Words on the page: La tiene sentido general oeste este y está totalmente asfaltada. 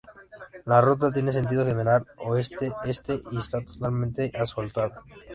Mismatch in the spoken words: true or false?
true